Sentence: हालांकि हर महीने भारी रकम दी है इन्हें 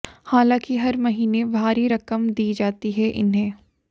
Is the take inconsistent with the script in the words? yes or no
yes